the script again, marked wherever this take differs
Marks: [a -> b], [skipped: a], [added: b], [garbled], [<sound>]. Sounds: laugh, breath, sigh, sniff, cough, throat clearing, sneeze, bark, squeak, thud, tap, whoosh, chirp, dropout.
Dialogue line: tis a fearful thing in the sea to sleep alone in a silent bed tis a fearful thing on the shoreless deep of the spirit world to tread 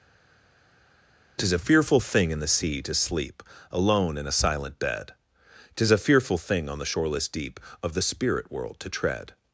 tis a fearful thing in the sea to sleep alone in a silent bed tis a fearful thing on the shoreless deep of the spirit world to tread